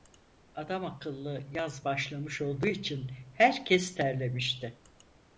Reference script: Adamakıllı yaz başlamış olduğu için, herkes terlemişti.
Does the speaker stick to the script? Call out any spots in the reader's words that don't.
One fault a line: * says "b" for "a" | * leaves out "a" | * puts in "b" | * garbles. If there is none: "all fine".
all fine